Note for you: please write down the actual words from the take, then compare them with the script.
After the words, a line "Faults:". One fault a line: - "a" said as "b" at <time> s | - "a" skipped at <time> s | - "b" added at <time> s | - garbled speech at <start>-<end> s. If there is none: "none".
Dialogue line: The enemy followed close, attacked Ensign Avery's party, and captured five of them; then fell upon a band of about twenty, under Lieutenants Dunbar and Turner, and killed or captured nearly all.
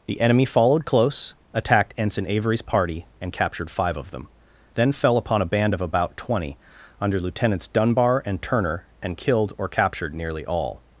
The enemy followed close, attacked Ensign Avery's party, and captured five of them; then fell upon a band of about twenty, under Lieutenants Dunbar and Turner, and killed or captured nearly all.
Faults:
none